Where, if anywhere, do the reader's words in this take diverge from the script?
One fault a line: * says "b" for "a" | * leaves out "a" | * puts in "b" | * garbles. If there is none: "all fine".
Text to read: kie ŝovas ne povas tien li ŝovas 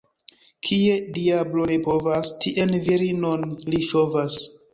* says "diablo" for "ŝovas"
* puts in "virinon"